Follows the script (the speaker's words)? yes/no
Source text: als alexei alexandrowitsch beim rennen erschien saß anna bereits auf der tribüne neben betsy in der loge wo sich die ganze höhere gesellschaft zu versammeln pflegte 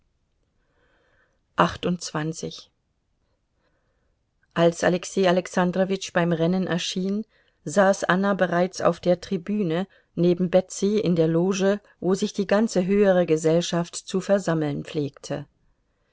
yes